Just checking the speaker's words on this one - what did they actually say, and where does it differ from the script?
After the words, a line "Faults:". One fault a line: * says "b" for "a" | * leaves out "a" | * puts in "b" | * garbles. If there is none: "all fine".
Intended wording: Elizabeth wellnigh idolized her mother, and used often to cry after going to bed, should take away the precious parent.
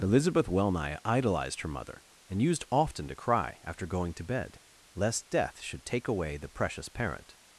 Elizabeth wellnigh idolized her mother, and used often to cry after going to bed, lest death should take away the precious parent.
Faults:
* puts in "lest death"